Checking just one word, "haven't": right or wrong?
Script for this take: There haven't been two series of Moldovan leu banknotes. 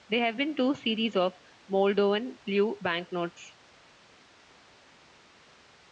wrong